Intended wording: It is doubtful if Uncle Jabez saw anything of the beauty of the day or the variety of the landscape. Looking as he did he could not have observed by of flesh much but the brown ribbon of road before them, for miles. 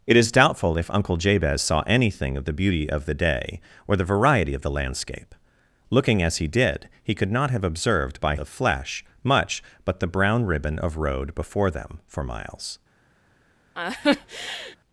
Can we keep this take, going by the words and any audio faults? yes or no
no